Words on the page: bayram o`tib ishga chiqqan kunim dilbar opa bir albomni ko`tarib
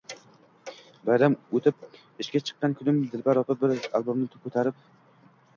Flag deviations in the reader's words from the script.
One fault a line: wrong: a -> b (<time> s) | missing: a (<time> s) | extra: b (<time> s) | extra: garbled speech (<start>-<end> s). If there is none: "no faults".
no faults